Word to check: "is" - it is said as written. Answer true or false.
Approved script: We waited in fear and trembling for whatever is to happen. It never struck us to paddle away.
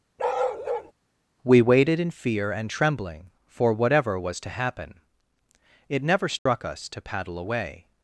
false